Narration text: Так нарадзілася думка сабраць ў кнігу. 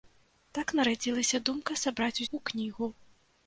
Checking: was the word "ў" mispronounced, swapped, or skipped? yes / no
no